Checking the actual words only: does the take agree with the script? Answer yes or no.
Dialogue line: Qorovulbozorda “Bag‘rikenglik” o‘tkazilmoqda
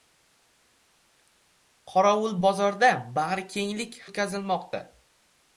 yes